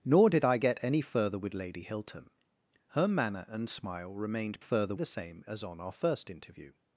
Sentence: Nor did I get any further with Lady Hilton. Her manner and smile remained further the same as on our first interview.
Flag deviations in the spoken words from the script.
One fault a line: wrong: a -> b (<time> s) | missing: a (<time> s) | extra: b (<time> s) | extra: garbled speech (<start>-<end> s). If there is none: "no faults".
no faults